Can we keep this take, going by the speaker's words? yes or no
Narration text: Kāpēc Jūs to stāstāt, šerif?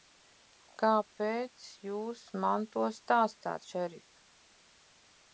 no